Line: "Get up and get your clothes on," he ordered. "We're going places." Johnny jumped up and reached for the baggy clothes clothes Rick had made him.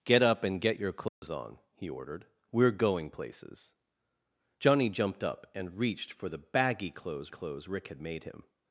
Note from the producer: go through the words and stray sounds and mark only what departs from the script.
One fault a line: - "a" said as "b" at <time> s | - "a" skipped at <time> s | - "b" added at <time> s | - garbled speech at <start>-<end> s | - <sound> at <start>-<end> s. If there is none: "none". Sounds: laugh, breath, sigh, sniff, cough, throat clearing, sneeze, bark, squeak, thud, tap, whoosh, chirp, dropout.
- dropout at 1.1-1.2 s